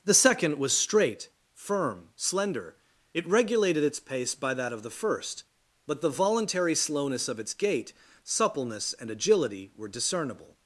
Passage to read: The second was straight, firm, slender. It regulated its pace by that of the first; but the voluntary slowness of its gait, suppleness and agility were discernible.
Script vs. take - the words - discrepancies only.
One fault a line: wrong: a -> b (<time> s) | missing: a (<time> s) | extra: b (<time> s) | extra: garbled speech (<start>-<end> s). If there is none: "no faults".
no faults